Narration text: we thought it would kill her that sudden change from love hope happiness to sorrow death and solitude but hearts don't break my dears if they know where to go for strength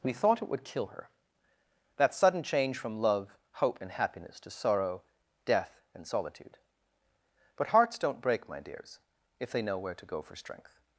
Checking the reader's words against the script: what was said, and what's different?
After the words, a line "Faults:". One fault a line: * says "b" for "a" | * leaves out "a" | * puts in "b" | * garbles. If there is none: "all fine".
we thought it would kill her that sudden change from love hope and happiness to sorrow death and solitude but hearts don't break my dears if they know where to go for strength
Faults:
* puts in "and"